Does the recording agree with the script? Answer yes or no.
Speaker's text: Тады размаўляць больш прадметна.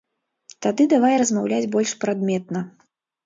no